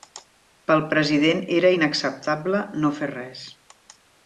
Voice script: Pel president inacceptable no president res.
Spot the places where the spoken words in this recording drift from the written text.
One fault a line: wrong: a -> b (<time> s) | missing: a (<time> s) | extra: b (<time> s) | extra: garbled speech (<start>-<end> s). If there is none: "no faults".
extra: era (1.6 s)
wrong: president -> fer (3.0 s)